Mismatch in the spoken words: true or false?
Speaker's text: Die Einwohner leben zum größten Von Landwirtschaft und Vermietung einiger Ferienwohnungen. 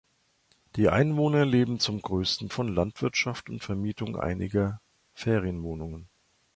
false